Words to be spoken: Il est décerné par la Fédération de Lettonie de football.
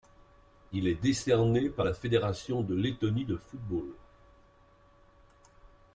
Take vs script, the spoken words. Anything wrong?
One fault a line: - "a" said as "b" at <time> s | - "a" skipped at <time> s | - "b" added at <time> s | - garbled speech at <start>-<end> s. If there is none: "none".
none